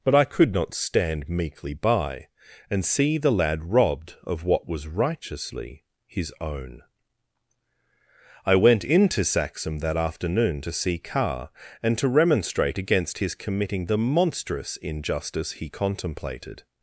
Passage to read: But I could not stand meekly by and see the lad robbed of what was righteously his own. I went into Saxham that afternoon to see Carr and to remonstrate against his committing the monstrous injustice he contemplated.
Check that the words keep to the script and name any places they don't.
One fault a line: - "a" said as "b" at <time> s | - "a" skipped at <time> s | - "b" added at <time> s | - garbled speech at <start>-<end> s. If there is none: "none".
none